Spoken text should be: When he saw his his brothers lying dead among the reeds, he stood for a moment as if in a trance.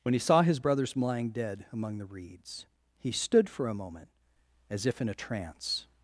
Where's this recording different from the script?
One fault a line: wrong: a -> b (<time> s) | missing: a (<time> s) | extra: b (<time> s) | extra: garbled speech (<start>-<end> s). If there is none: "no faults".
missing: his (0.6 s)